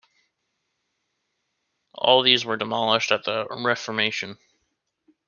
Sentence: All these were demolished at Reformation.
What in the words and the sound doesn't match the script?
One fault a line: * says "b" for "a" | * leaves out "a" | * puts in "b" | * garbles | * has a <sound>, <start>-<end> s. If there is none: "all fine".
* puts in "the"